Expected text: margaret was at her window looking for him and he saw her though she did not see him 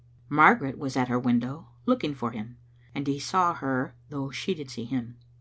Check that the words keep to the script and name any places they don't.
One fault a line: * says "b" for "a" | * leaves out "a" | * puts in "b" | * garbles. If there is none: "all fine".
* leaves out "not"